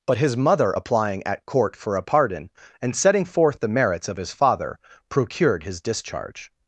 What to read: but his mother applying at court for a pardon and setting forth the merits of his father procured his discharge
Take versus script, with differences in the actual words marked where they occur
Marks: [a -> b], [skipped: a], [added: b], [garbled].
but his mother applying at court for a pardon and setting forth the merits of his father procured his discharge